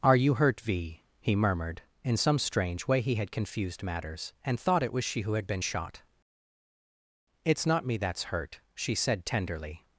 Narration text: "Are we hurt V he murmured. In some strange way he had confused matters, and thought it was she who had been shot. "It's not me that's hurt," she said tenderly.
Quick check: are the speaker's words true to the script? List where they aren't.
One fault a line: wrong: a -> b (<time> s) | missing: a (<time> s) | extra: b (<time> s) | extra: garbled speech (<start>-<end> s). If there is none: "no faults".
wrong: we -> you (0.1 s)